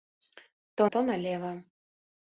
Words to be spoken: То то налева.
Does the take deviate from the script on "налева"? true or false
false